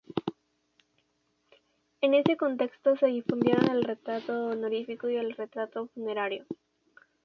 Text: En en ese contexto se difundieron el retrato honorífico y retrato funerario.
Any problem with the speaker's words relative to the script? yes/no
yes